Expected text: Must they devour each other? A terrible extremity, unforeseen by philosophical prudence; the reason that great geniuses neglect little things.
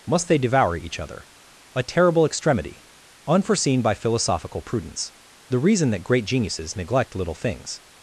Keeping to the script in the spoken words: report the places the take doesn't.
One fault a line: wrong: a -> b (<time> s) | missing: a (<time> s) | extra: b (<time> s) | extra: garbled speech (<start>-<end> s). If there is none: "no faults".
no faults